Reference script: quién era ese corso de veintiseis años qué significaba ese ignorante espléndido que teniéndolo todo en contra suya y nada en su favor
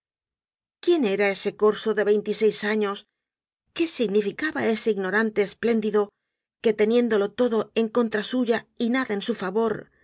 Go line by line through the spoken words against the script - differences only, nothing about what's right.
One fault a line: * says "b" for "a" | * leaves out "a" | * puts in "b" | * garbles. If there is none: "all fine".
all fine